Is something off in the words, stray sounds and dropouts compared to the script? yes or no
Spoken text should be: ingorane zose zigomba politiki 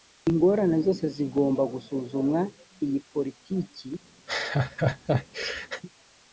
yes